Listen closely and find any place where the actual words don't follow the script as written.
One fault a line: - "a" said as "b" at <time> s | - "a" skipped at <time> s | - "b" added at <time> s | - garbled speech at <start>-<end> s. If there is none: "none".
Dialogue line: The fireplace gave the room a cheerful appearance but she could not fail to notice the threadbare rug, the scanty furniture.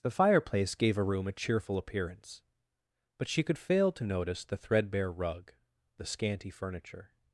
- "the" said as "a" at 1.0 s
- "not" skipped at 3.6 s